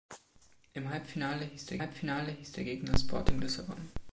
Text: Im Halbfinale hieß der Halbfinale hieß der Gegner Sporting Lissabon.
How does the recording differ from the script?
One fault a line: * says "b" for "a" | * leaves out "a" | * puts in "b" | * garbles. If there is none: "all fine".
all fine